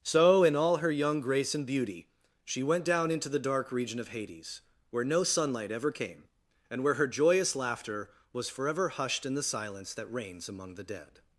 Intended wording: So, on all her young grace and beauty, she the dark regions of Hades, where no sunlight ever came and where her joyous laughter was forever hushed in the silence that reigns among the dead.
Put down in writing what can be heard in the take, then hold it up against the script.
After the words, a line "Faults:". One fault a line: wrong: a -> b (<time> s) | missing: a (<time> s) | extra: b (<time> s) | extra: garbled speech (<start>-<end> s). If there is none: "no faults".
So, in all her young grace and beauty, she went down into the dark region of Hades, where no sunlight ever came and where her joyous laughter was forever hushed in the silence that reigns among the dead.
Faults:
wrong: on -> in (0.4 s)
extra: went down into (2.6 s)
wrong: regions -> region (3.7 s)